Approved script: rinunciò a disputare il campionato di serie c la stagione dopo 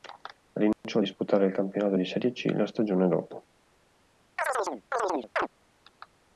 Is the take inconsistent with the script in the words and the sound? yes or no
yes